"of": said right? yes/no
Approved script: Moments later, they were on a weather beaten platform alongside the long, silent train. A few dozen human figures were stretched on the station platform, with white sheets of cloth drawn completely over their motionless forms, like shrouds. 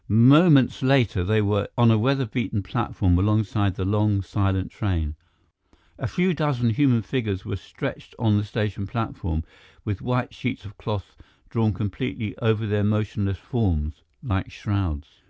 yes